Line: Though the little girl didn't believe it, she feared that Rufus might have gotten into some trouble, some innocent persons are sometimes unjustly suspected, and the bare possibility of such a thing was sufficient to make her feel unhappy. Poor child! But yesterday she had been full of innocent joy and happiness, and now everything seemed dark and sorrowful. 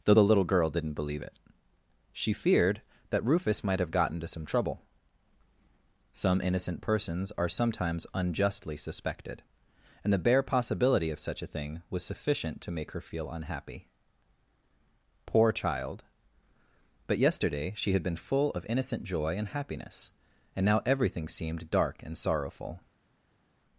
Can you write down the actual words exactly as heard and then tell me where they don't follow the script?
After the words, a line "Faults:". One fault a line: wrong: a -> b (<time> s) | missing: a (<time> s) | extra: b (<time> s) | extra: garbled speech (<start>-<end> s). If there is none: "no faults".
Though the little girl didn't believe it, she feared that Rufus might have gotten into some trouble, some innocent persons are sometimes unjustly suspected, and the bare possibility of such a thing was sufficient to make her feel unhappy. Poor child! But yesterday she had been full of innocent joy and happiness, and now everything seemed dark and sorrowful.
Faults:
no faults